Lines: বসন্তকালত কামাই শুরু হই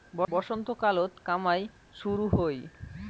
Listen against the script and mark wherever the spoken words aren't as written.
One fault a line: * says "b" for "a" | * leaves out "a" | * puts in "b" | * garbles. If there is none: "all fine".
all fine